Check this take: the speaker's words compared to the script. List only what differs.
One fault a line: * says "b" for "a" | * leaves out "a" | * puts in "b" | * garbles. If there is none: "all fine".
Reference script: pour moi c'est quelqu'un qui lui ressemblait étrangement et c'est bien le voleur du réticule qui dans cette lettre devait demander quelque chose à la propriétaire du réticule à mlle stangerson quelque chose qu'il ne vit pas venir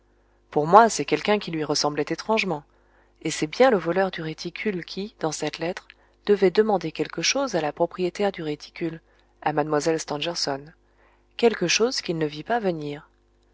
all fine